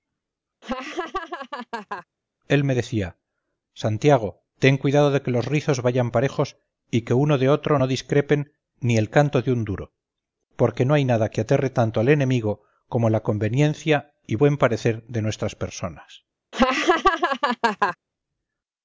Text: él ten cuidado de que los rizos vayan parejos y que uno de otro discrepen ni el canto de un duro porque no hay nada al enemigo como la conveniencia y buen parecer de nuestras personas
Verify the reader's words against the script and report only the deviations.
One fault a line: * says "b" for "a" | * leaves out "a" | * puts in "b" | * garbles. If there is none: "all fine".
* puts in "me decía santiago"
* puts in "no"
* puts in "que aterre tanto"